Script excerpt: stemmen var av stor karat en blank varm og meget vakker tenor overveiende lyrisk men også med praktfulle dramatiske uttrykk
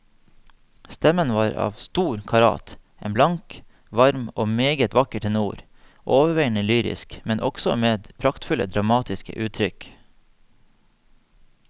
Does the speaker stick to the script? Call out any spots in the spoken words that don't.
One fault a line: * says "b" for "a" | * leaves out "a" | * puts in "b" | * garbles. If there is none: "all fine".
all fine